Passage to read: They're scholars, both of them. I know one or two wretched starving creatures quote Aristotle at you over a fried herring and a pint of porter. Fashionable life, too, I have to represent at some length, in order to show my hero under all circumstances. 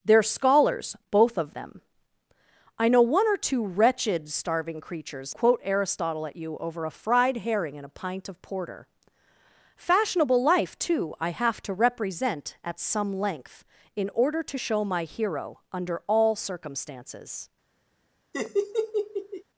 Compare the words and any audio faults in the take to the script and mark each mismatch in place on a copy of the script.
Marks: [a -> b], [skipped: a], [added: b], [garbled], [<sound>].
They're scholars, both of them. I know one or two wretched starving creatures quote Aristotle at you over a fried herring and a pint of porter. Fashionable life, too, I have to represent at some length, in order to show my hero under all circumstances. [laugh]